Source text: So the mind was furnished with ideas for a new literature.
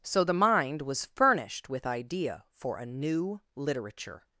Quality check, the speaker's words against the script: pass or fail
fail